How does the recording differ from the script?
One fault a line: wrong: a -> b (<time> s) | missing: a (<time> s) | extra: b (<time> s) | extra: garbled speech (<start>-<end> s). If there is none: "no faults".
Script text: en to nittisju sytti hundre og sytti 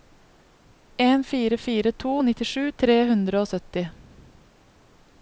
extra: fire fire (1.3 s)
wrong: sytti -> tre (2.8 s)